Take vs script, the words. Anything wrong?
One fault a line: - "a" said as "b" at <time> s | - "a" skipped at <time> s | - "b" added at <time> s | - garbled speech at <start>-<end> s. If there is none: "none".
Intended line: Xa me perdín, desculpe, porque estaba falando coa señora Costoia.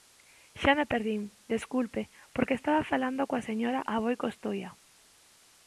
- "Aboi" added at 3.9 s